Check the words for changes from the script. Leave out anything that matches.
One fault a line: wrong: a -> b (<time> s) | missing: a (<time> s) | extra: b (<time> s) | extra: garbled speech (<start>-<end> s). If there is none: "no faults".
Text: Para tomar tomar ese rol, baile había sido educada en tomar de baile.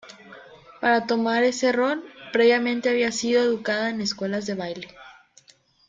missing: tomar (1.4 s)
wrong: baile -> previamente (2.3 s)
wrong: tomar -> escuelas (4.0 s)